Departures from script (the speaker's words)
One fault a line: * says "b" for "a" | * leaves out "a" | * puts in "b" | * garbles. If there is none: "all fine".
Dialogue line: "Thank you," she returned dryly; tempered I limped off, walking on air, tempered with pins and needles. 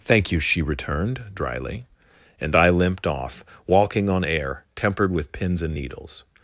* says "and" for "tempered"